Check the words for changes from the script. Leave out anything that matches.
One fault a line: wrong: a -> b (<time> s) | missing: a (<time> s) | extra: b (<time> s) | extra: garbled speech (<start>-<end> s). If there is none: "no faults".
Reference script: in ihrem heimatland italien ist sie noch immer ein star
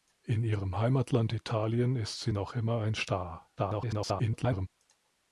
extra: garbled speech (3.6-4.7 s)